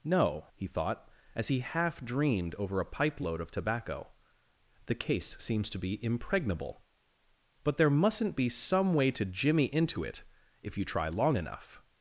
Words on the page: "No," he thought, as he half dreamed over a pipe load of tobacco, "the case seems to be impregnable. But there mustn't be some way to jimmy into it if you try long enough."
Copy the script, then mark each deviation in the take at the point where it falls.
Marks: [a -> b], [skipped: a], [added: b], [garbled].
"No," he thought, as he half dreamed over a pipe load of tobacco, "the case seems to be impregnable. But there mustn't be some way to jimmy into it if you try long enough."